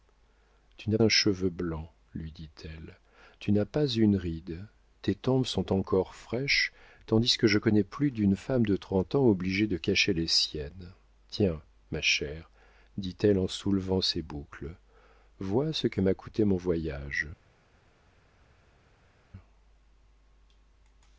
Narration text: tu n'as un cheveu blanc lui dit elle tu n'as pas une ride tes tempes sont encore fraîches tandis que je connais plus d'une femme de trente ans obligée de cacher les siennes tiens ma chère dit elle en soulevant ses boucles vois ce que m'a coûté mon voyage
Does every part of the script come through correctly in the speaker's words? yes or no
yes